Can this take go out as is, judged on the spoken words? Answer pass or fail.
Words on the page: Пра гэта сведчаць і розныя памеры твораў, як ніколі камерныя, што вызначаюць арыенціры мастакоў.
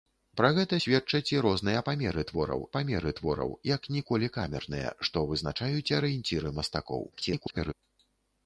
fail